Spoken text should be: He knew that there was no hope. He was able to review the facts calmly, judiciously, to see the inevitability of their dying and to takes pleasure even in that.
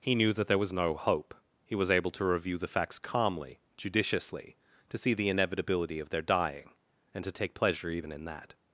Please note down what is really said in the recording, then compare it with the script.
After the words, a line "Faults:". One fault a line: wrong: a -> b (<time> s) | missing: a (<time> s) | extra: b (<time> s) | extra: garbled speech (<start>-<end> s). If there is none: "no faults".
He knew that there was no hope. He was able to review the facts calmly, judiciously, to see the inevitability of their dying and to take pleasure even in that.
Faults:
wrong: takes -> take (7.3 s)